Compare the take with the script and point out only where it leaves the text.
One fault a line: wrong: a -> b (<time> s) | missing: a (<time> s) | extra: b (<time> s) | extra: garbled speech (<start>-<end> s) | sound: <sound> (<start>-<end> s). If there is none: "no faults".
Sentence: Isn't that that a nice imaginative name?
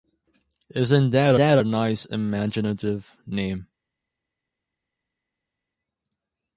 no faults